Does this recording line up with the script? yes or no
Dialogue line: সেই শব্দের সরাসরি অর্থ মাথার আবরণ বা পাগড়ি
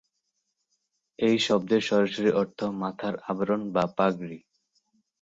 no